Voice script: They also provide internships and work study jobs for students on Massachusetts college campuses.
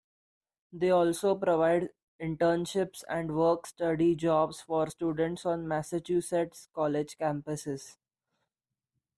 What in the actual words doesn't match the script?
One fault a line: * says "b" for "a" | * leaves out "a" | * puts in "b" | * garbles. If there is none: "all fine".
all fine